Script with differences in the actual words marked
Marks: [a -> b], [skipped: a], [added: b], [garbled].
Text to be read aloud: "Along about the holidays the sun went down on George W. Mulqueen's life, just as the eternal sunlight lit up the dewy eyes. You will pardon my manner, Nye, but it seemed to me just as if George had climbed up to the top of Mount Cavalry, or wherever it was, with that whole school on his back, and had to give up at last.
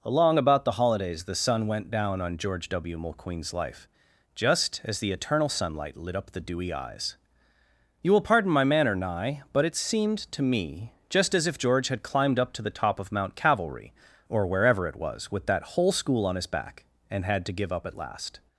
"Along about the holidays the sun went down on George W. Mulqueen's life, just as the eternal sunlight lit up the dewy eyes. You will pardon my manner, Nye, but it seemed to me just as if George had climbed up to the top of Mount Cavalry, or wherever it was, with that whole school on his back, and had to give up at last.